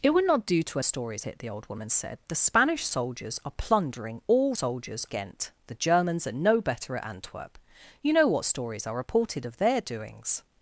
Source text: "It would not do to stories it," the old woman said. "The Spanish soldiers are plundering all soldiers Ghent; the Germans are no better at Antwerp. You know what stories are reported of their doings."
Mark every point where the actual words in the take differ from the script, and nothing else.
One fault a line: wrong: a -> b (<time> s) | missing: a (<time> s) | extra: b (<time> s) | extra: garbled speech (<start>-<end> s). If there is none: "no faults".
no faults